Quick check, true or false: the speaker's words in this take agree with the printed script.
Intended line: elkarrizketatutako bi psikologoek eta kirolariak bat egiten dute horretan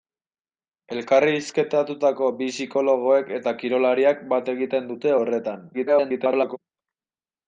false